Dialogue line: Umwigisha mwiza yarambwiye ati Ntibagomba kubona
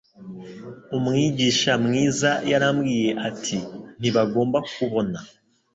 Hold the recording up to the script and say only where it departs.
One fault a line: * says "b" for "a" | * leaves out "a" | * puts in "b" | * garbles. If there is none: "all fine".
all fine